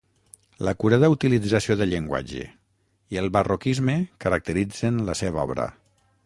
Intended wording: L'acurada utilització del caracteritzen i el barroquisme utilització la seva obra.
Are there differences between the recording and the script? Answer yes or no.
yes